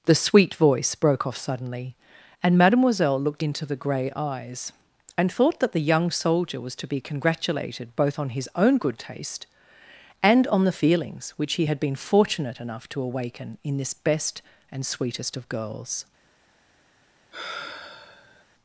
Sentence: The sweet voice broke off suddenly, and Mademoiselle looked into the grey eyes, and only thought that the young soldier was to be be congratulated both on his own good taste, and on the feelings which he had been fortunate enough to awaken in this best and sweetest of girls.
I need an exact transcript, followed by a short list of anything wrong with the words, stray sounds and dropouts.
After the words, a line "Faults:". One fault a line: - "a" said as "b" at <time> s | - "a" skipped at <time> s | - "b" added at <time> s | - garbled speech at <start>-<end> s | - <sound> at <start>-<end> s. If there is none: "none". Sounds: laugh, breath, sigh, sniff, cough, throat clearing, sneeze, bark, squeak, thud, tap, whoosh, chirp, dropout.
The sweet voice broke off suddenly, and Mademoiselle looked into the grey eyes, and thought that the young soldier was to be congratulated both on his own good taste, and on the feelings which he had been fortunate enough to awaken in this best and sweetest of girls.
Faults:
- "only" skipped at 5.3 s
- "be" skipped at 7.0 s
- sigh at 17.3-18.5 s